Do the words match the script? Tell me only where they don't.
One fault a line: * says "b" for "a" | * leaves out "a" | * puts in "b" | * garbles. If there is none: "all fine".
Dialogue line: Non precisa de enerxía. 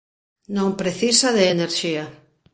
all fine